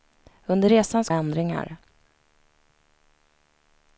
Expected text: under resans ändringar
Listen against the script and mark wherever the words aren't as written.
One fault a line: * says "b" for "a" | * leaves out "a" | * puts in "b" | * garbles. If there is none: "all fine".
all fine